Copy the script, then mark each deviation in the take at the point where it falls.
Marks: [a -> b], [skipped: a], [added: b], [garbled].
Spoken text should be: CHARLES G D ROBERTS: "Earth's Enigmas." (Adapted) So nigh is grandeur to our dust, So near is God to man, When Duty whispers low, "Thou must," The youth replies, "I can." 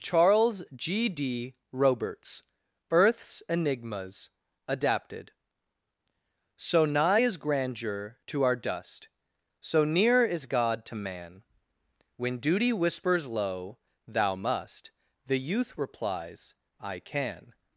CHARLES G D ROBERTS: "Earth's Enigmas." (Adapted) So nigh is grandeur to our dust, So near is God to man, When Duty whispers low, "Thou must," The youth replies, "I can."